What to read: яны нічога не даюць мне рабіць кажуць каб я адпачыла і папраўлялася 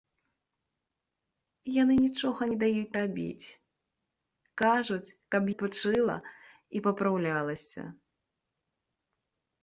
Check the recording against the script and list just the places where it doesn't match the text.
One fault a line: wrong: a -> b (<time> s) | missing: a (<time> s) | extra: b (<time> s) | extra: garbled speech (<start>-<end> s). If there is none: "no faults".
missing: мне (3.0 s)
missing: я (5.5 s)